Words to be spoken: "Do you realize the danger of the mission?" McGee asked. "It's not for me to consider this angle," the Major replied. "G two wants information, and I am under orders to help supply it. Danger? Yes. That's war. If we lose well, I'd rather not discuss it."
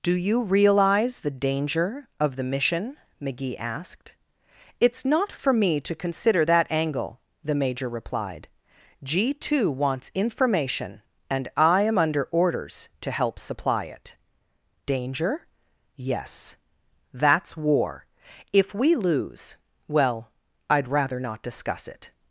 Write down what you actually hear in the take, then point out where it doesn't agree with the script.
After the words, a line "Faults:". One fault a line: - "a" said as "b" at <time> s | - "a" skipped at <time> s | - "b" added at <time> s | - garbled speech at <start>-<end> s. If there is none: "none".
"Do you realize the danger of the mission?" McGee asked. "It's not for me to consider that angle," the Major replied. "G two wants information, and I am under orders to help supply it. Danger? Yes. That's war. If we lose well, I'd rather not discuss it."
Faults:
- "this" said as "that" at 6.4 s